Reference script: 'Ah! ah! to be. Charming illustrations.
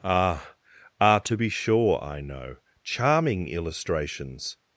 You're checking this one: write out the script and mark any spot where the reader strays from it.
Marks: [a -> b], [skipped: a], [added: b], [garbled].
'Ah! ah! to be. [added: sure I know] Charming illustrations.